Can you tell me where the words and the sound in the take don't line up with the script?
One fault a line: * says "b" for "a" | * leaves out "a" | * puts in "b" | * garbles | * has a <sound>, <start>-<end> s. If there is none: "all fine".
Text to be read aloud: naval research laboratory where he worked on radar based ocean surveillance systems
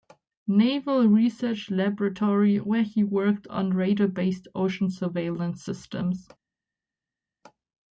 all fine